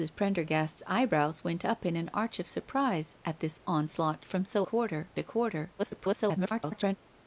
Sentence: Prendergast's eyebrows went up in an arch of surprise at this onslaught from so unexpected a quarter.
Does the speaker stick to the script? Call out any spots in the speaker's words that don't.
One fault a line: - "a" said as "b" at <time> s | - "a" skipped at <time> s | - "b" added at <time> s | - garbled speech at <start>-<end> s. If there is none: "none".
- "unexpected" said as "quarter" at 4.6 s
- garbled speech at 5.8-7.0 s